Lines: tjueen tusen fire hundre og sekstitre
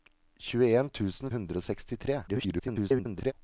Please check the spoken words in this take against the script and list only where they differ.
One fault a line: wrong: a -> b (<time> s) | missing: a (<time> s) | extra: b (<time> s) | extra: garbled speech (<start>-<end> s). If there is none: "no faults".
missing: fire (1.3 s)
extra: garbled speech (2.3-3.3 s)